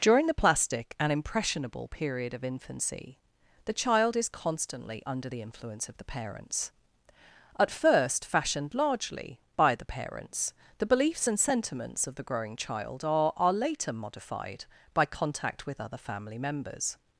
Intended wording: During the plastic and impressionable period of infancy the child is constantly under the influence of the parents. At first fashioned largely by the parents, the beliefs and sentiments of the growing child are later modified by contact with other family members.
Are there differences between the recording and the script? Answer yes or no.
yes